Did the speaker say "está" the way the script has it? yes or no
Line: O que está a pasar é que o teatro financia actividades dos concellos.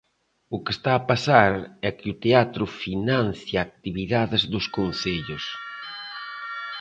yes